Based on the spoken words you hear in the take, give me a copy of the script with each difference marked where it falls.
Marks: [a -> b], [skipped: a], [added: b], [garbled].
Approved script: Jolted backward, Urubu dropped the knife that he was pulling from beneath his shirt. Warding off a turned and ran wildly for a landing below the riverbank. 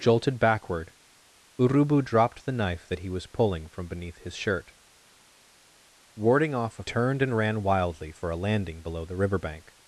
Jolted backward, Urubu dropped the knife that he was pulling from beneath his shirt. Warding off a turned and ran wildly for a landing below the riverbank.